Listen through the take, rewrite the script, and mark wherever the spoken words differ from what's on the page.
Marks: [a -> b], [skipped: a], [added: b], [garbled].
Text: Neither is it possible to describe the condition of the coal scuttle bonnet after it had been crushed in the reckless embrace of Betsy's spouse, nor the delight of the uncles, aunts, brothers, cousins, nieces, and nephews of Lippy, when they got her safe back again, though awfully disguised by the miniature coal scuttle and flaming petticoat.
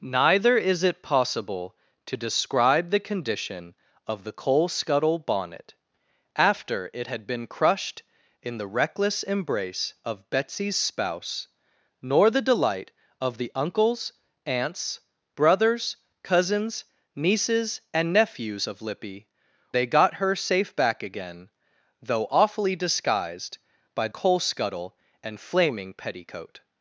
Neither is it possible to describe the condition of the coal scuttle bonnet after it had been crushed in the reckless embrace of Betsy's spouse, nor the delight of the uncles, aunts, brothers, cousins, nieces, and nephews of Lippy, [skipped: when] they got her safe back again, though awfully disguised by [skipped: the miniature] coal scuttle and flaming petticoat.